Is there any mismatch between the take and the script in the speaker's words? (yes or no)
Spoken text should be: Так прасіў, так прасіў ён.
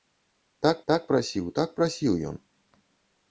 yes